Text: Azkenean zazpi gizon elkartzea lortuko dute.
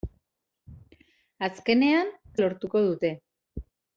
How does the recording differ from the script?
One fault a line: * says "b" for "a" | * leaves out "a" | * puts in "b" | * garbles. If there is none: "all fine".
* leaves out "zazpi gizon elkartzea"